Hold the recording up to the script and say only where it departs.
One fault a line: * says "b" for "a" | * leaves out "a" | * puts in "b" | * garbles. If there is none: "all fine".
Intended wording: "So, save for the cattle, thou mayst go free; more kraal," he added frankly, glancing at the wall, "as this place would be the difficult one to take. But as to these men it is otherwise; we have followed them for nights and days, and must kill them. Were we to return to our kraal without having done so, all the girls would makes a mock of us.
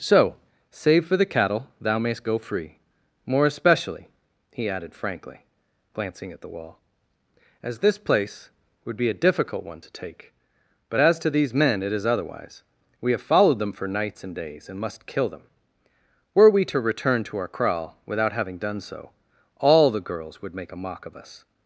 * says "especially" for "kraal"
* says "a" for "the"
* says "make" for "makes"